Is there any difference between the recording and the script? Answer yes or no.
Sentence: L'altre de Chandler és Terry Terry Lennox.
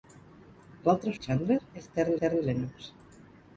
no